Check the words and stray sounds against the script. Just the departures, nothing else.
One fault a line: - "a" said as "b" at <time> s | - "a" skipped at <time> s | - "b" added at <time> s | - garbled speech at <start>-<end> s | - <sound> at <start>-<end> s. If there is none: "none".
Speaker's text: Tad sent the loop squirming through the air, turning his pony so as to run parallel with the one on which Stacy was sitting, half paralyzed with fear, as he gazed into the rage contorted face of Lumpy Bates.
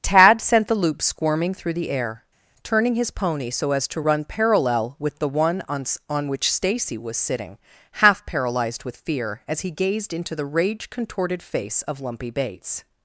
- "on" added at 6.1 s